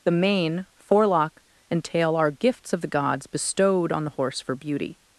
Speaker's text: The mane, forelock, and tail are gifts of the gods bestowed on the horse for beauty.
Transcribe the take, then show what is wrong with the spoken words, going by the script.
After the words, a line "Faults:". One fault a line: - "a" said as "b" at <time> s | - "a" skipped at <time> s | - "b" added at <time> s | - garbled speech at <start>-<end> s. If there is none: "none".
The mane, forelock, and tail are gifts of the gods bestowed on the horse for beauty.
Faults:
none